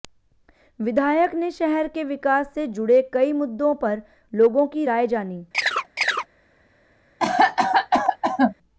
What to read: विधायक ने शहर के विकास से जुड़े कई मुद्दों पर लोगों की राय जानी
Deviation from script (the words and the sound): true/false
true